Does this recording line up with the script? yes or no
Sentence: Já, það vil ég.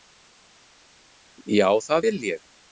yes